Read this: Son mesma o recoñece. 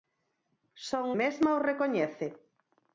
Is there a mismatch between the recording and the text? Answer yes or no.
no